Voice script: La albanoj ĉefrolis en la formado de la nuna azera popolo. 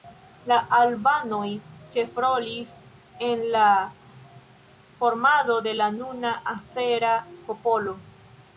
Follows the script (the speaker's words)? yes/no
yes